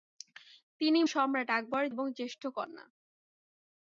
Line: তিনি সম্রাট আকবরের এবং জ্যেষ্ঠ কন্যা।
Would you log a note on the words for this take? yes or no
no